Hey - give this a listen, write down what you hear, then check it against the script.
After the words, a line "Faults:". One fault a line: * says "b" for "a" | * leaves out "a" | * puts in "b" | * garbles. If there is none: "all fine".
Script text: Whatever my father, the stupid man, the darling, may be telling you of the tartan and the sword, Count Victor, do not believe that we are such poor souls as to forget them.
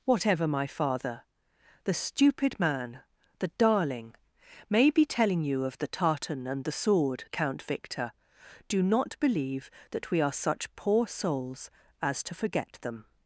Whatever my father, the stupid man, the darling, may be telling you of the tartan and the sword, Count Victor, do not believe that we are such poor souls as to forget them.
Faults:
all fine